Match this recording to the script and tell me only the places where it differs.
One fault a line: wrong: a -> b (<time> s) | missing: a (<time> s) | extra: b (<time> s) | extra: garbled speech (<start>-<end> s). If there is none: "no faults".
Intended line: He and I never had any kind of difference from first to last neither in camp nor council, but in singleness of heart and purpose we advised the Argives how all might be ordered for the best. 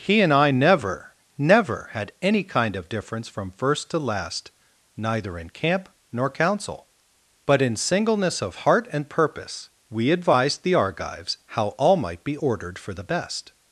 extra: never (1.4 s)